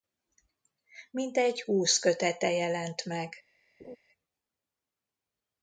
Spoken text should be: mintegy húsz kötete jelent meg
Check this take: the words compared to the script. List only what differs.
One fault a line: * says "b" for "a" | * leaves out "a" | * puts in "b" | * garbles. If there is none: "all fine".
all fine